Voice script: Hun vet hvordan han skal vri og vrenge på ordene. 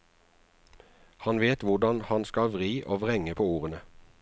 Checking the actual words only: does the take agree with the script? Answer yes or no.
no